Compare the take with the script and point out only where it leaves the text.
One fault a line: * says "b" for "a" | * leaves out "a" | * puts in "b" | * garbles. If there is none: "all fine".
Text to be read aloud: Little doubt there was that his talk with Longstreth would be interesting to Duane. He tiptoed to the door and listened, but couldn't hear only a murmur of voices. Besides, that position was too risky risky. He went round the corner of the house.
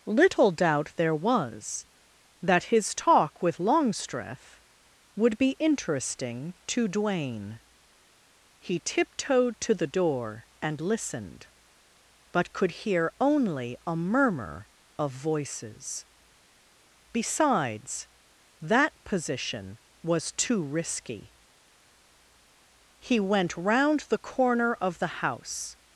* says "could" for "couldn't"
* leaves out "risky"